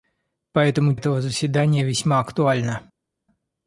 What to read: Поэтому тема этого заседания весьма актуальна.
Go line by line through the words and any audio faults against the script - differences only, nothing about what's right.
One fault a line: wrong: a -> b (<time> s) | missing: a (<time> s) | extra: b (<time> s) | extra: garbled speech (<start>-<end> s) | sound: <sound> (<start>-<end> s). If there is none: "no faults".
missing: тема (0.9 s)